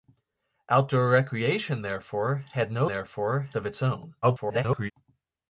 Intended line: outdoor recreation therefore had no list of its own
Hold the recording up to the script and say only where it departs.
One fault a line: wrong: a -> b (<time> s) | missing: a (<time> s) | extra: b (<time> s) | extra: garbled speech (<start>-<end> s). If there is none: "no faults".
wrong: list -> therefore (2.9 s)
extra: garbled speech (4.2-4.9 s)